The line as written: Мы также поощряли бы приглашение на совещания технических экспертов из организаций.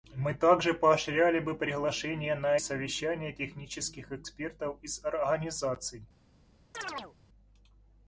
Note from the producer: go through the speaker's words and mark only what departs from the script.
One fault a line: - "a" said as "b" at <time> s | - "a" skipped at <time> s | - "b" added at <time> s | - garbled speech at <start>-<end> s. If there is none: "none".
none